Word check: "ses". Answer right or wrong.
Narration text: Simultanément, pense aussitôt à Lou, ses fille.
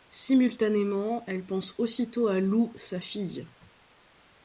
wrong